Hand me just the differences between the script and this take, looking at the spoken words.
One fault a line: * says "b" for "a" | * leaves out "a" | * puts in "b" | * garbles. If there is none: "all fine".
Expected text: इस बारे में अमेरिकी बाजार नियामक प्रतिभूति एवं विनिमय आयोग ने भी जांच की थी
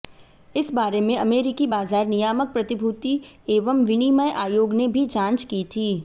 all fine